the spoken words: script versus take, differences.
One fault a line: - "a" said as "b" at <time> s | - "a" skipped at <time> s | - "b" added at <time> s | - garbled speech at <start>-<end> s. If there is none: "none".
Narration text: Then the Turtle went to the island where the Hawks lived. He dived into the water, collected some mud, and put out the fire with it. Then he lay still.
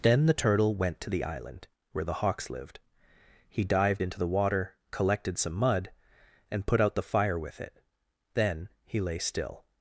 none